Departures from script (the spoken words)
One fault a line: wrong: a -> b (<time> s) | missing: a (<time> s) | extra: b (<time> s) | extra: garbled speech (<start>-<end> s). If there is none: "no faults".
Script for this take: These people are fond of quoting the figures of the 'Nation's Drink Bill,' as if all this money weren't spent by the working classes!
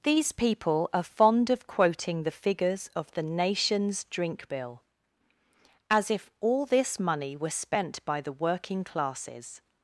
wrong: weren't -> were (7.4 s)